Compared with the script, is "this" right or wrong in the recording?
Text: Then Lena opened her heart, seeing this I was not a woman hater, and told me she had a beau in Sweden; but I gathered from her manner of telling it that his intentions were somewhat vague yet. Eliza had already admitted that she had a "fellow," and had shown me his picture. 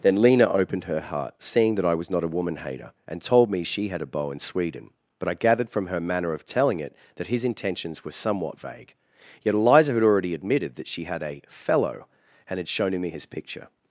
wrong